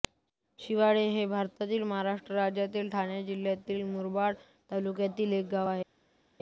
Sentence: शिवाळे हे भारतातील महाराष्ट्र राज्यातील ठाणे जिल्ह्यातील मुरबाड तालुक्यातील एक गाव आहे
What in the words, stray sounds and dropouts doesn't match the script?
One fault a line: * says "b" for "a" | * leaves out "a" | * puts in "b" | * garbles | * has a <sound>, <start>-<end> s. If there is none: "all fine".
all fine